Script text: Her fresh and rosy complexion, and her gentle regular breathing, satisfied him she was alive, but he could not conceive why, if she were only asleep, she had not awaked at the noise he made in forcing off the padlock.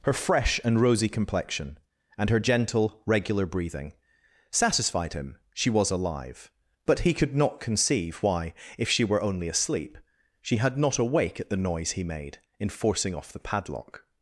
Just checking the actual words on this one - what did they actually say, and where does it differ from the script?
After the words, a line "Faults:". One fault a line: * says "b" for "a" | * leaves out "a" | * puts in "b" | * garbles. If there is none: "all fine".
Her fresh and rosy complexion, and her gentle regular breathing, satisfied him she was alive, but he could not conceive why, if she were only asleep, she had not awake at the noise he made in forcing off the padlock.
Faults:
* says "awake" for "awaked"